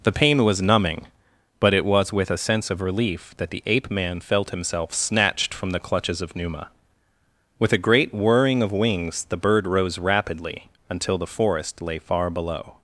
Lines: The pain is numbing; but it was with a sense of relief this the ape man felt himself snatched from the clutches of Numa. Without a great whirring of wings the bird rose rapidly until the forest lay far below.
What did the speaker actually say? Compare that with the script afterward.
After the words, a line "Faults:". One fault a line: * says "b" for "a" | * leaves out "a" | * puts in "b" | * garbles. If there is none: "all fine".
The pain was numbing; but it was with a sense of relief that the ape man felt himself snatched from the clutches of Numa. With a great whirring of wings the bird rose rapidly until the forest lay far below.
Faults:
* says "was" for "is"
* says "that" for "this"
* says "With" for "Without"